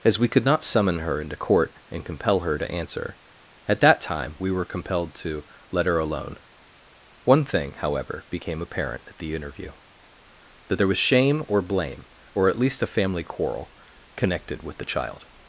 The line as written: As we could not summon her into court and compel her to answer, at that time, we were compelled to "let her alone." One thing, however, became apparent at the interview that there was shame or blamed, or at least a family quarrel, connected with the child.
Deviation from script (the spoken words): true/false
true